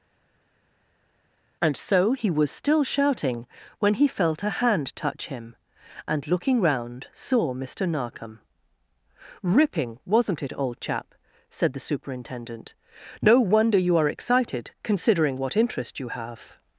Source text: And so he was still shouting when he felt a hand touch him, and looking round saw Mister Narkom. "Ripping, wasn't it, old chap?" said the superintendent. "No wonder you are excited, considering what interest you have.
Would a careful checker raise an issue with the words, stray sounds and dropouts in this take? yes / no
no